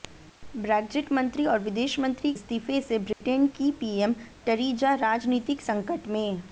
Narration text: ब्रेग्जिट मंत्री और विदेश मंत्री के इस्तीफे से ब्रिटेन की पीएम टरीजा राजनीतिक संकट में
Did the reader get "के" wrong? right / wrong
wrong